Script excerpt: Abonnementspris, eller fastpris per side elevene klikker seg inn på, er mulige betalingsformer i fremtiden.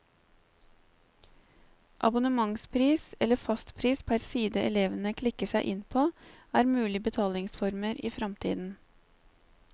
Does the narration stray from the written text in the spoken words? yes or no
no